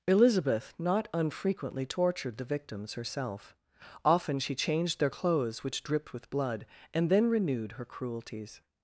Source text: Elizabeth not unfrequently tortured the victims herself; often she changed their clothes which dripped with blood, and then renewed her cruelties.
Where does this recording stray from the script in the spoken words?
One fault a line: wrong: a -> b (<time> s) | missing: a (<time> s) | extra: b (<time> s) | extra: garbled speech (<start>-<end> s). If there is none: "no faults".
no faults